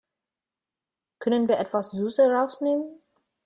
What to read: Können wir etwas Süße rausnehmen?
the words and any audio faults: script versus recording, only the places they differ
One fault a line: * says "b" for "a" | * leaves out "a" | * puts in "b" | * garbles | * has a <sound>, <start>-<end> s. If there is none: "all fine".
all fine